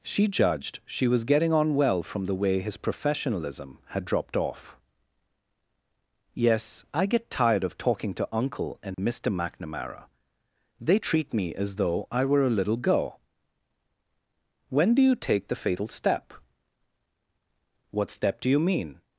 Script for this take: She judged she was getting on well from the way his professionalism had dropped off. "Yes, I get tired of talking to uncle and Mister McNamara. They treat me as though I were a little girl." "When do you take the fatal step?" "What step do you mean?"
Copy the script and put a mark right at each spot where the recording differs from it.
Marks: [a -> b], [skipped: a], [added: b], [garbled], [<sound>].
She judged she was getting on well from the way his professionalism had dropped off. "Yes, I get tired of talking to uncle and [dropout] Mister McNamara. They treat me as though I were a little girl." "When do you take the fatal step?" "What step do you mean?"